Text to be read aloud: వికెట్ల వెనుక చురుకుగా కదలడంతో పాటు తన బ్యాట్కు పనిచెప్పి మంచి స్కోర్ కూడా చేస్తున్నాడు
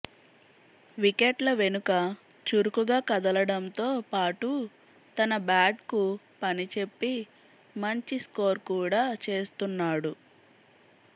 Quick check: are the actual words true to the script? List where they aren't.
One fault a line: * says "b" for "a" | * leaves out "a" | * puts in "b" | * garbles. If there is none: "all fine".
all fine